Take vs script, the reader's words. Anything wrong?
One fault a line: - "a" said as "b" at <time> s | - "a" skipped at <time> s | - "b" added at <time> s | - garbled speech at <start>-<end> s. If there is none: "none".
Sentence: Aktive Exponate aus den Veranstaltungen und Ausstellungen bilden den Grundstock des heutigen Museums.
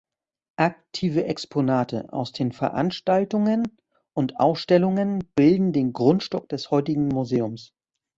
none